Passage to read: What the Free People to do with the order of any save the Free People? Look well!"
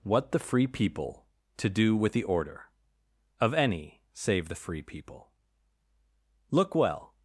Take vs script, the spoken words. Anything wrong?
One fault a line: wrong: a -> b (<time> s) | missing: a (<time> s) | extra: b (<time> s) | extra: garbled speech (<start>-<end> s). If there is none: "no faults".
no faults